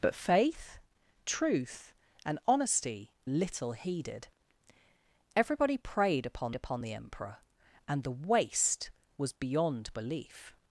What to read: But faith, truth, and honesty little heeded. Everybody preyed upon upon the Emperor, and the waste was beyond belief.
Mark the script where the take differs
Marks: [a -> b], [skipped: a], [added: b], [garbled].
But faith, truth, and honesty little heeded. Everybody preyed upon upon the Emperor, and the waste was beyond belief.